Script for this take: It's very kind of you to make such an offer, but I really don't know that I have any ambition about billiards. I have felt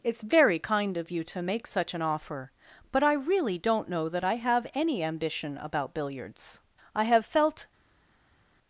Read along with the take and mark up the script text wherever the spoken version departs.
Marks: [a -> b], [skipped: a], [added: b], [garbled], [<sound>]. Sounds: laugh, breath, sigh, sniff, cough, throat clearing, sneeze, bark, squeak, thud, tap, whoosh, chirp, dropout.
It's very kind of you to make such an offer, but I really don't know that I have any ambition about billiards. I have felt